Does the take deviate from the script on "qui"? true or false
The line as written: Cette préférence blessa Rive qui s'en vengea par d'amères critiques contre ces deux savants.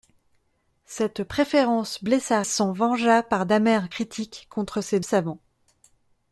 true